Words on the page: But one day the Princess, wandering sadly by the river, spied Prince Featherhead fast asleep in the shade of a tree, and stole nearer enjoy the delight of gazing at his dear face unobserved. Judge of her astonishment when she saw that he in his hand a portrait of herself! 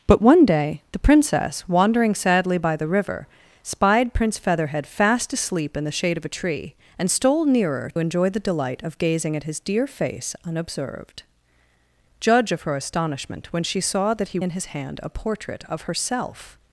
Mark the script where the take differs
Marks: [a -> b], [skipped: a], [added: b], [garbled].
But one day the Princess, wandering sadly by the river, spied Prince Featherhead fast asleep in the shade of a tree, and stole nearer enjoy the delight of gazing at his dear face unobserved. Judge of her astonishment when she saw that he in his hand a portrait of herself!